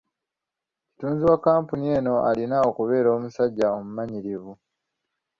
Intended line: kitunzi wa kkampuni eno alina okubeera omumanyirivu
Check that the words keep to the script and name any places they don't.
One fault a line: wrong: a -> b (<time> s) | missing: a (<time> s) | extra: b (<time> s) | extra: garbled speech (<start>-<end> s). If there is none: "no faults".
extra: omusajja (3.2 s)